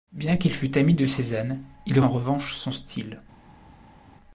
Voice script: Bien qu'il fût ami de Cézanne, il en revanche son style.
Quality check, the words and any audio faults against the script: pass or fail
pass